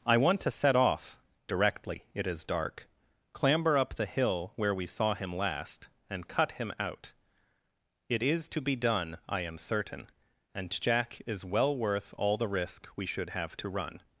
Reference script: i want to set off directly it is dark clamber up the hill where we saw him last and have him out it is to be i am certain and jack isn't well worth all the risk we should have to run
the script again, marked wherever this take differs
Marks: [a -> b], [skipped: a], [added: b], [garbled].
i want to set off directly it is dark clamber up the hill where we saw him last and [have -> cut] him out it is to be [added: done] i am certain and jack [isn't -> is] well worth all the risk we should have to run